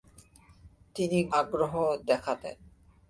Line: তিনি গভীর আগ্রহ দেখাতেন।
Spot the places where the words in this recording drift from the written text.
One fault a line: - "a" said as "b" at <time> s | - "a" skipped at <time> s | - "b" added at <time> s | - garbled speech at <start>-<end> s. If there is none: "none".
- "গভীর" skipped at 1.2 s